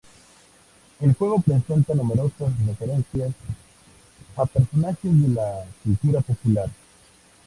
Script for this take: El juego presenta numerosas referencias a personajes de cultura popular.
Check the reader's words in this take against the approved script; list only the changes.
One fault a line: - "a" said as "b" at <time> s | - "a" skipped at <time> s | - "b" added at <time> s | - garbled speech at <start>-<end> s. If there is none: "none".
- "la" added at 5.3 s